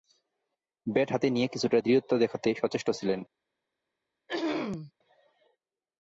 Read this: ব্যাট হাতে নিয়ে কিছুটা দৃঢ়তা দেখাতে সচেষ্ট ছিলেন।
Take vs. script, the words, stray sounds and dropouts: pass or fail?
fail